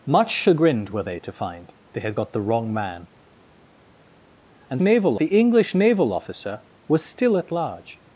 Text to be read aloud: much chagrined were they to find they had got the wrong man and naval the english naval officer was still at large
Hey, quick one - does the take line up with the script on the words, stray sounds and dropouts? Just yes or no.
yes